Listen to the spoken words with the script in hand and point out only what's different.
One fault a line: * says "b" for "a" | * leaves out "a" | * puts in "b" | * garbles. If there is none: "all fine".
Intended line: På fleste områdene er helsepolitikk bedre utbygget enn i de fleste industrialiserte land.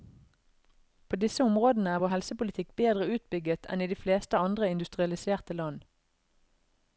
* says "disse" for "fleste"
* puts in "vår"
* puts in "andre"